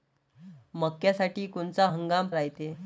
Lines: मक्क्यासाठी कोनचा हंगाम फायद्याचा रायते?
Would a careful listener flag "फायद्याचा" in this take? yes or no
yes